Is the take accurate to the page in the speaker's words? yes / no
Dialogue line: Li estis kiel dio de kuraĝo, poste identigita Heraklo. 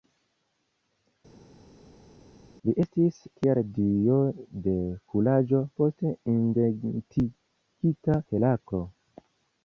yes